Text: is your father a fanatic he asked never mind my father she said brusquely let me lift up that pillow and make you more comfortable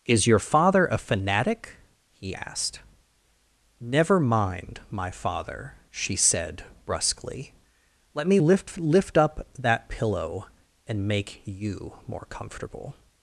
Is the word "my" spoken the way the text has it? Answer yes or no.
yes